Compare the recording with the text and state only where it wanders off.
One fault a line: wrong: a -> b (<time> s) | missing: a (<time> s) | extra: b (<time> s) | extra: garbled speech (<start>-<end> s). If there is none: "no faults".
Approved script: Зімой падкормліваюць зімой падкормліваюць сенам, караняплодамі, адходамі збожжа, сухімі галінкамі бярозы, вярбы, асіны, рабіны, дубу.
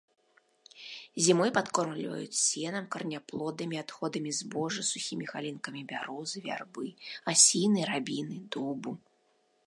missing: зімой падкормліваюць (2.4 s)